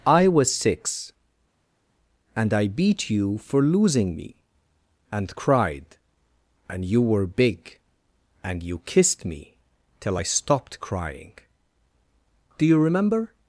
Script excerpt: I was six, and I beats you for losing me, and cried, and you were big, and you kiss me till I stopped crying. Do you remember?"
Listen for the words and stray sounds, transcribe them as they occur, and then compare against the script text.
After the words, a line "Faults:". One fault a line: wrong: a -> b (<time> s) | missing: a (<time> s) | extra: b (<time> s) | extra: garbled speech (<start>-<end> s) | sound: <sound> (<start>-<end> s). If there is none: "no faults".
I was six, and I beat you for losing me, and cried, and you were big, and you kissed me till I stopped crying. Do you remember?"
Faults:
wrong: beats -> beat (2.7 s)
wrong: kiss -> kissed (8.9 s)